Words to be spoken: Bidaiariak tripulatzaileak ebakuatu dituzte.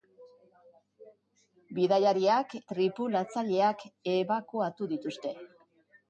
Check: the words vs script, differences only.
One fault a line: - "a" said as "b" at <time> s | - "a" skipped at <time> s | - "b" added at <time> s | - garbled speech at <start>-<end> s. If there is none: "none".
none